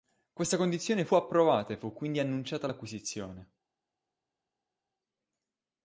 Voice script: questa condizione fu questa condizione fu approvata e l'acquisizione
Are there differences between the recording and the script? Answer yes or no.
yes